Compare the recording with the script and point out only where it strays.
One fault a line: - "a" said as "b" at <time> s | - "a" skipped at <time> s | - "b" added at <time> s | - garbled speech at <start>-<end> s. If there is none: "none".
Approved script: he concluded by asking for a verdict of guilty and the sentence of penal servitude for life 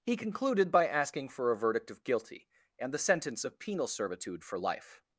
none